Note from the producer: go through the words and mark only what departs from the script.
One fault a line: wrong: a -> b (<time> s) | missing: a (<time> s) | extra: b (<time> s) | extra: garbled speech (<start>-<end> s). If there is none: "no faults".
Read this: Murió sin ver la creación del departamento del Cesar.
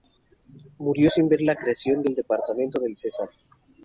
no faults